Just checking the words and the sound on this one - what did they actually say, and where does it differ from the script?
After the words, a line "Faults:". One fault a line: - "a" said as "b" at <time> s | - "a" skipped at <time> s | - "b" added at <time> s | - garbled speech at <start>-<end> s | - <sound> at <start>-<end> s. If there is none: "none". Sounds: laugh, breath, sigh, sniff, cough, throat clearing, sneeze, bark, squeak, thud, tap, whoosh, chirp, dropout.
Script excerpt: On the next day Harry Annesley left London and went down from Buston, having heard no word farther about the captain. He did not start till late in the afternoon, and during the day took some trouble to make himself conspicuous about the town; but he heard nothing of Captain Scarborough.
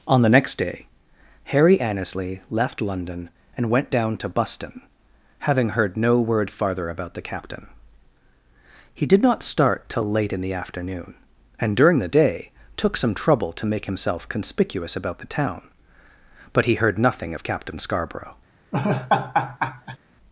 On the next day Harry Annesley left London and went down to Buston, having heard no word farther about the captain. He did not start till late in the afternoon, and during the day took some trouble to make himself conspicuous about the town; but he heard nothing of Captain Scarborough.
Faults:
- "from" said as "to" at 4.2 s
- laugh at 18.7-20.0 s